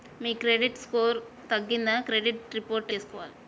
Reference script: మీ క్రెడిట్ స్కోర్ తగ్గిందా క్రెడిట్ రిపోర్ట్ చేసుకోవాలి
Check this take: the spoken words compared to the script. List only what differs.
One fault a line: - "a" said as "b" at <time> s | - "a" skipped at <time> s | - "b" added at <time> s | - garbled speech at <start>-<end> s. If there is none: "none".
none